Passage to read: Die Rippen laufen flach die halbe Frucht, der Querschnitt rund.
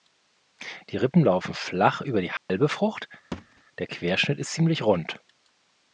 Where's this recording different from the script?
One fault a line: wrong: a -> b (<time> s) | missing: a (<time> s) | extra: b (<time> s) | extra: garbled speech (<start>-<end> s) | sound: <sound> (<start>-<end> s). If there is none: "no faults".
extra: über (2.0 s)
sound: dropout (2.4-2.5 s)
sound: thud (3.3-3.6 s)
extra: ist ziemlich (4.4 s)